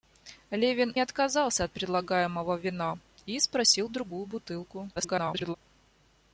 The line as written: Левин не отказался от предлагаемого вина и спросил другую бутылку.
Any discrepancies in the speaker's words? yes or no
yes